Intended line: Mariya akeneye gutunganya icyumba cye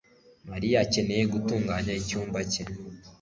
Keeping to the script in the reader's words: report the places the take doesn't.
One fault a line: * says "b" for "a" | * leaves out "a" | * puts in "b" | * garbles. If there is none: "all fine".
all fine